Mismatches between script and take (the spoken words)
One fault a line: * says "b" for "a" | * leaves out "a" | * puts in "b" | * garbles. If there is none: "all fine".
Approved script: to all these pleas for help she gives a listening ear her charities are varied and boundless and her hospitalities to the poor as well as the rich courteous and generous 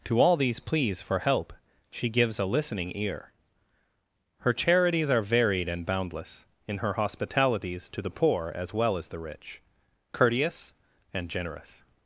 * says "in" for "and"